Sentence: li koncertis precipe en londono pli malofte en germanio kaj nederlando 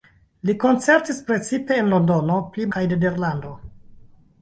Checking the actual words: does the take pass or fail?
fail